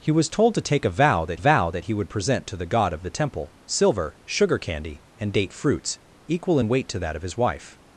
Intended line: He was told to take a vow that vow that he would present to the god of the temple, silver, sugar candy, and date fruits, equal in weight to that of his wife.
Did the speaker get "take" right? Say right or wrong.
right